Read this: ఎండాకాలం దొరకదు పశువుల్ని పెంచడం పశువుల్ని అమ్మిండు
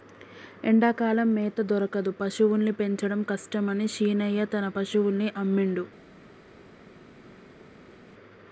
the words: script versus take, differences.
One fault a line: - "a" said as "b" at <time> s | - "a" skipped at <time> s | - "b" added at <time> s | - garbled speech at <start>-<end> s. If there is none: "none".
- "మేత" added at 1.3 s
- "కష్టమని శీనయ్య తన" added at 3.3 s